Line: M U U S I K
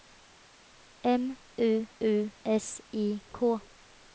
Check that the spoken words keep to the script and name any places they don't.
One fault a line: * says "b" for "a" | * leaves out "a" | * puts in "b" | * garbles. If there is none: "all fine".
all fine